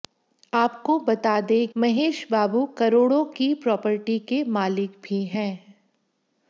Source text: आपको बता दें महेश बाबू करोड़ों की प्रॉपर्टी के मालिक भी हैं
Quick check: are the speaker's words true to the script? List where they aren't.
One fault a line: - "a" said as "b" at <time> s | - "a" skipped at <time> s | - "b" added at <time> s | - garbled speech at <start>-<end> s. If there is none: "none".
none